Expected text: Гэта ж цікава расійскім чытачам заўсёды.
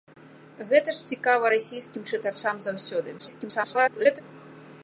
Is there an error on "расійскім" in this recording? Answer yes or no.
no